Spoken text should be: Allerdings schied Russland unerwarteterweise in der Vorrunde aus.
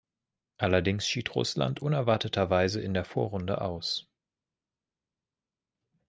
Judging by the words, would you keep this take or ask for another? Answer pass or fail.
pass